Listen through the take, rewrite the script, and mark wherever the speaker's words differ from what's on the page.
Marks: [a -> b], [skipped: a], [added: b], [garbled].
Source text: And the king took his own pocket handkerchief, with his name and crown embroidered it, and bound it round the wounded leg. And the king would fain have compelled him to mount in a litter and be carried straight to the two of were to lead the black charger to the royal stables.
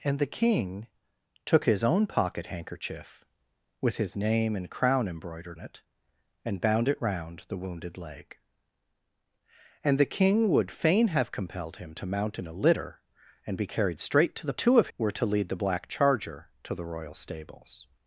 And the king took his own pocket handkerchief, with his name and crown embroidered it, and bound it round the wounded leg. And the king would fain have compelled him to mount in a litter and be carried straight to the two of were to lead the black charger to the royal stables.